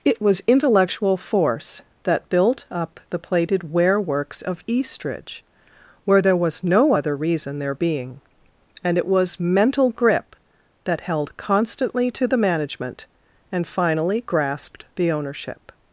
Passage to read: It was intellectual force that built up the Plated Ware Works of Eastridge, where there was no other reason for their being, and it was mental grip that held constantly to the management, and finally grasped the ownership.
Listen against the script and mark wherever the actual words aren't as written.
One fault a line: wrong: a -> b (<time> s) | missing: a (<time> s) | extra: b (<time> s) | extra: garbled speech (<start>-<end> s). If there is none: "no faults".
missing: for (7.6 s)